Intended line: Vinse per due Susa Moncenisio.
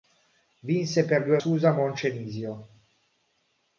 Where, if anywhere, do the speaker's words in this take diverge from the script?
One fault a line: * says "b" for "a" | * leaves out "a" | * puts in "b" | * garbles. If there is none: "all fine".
all fine